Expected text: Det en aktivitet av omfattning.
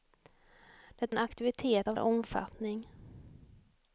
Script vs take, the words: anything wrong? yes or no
no